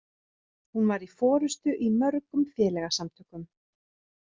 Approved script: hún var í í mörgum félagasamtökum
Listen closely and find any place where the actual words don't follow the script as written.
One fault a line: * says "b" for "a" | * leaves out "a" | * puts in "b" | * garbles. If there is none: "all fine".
* puts in "forystu"